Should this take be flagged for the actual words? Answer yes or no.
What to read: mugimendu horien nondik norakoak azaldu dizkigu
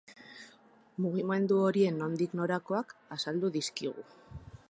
no